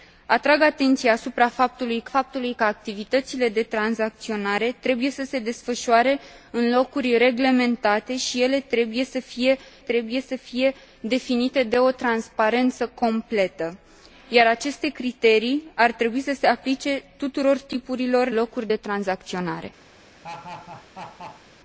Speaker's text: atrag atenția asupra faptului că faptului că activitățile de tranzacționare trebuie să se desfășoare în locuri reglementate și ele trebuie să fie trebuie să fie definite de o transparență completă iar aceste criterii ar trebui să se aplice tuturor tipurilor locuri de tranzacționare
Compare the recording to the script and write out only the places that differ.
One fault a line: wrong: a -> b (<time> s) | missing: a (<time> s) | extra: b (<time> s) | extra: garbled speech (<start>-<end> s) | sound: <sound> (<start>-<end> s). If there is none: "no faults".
sound: laugh (20.2-21.4 s)